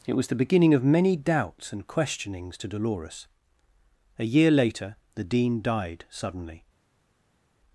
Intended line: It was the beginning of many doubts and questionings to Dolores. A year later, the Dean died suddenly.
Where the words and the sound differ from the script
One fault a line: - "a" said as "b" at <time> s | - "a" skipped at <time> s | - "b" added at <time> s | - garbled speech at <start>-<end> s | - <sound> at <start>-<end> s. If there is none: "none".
none